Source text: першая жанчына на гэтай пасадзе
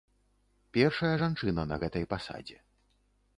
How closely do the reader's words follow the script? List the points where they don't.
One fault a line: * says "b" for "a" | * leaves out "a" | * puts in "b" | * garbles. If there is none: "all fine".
all fine